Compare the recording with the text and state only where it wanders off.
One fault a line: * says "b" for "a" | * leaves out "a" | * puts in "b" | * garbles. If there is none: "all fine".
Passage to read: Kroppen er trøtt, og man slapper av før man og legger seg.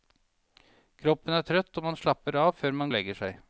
all fine